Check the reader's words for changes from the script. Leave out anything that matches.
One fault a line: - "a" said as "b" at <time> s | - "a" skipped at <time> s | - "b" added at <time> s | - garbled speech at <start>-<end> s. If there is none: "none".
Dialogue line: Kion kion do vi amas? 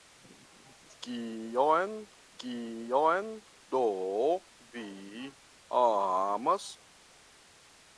none